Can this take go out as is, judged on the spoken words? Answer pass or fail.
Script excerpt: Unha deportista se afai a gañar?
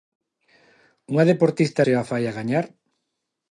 pass